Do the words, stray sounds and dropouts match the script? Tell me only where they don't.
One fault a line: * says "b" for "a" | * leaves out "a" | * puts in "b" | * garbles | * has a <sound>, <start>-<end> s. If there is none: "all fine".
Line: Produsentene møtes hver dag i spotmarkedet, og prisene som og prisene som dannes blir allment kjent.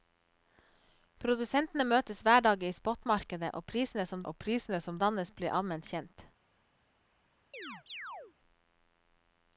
* has a chirp, 7.5-8.3 s